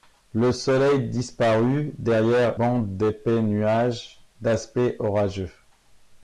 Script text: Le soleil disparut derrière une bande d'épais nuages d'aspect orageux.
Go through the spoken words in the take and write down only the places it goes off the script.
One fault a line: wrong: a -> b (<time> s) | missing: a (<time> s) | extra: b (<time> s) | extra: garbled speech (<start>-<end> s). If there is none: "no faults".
missing: une (2.6 s)